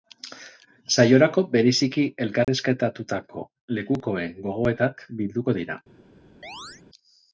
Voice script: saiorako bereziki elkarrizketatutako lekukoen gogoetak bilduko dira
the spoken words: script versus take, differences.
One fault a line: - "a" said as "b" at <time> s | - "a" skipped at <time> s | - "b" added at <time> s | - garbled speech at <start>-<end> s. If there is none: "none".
none